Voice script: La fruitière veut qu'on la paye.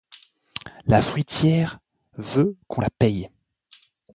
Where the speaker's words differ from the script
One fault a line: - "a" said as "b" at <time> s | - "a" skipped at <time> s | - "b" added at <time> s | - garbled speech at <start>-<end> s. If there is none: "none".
none